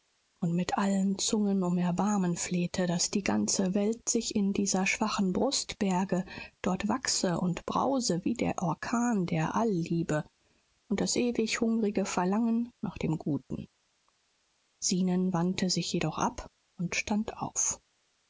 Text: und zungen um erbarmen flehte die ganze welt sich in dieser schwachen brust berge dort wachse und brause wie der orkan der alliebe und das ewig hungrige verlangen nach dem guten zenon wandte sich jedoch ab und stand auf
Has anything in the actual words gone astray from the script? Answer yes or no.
yes